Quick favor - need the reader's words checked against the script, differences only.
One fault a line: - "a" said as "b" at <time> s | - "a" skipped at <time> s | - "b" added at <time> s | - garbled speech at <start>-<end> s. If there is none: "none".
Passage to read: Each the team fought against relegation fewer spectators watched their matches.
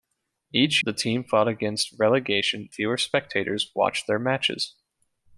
none